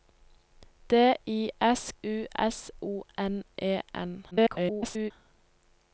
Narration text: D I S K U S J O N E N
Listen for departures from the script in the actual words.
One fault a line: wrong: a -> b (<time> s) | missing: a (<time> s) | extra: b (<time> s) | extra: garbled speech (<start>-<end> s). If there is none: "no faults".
missing: K (1.9 s)
missing: J (2.7 s)
extra: garbled speech (4.3-5.1 s)